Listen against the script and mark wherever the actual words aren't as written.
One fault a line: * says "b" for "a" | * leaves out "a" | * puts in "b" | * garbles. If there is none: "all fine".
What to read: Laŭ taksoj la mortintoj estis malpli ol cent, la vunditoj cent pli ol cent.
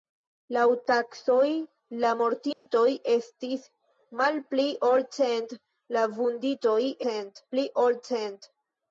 all fine